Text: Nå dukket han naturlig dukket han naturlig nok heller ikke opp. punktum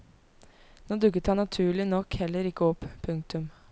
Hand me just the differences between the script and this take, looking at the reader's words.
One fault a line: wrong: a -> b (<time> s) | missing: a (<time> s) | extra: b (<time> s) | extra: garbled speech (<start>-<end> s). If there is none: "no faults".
missing: dukket han naturlig (1.9 s)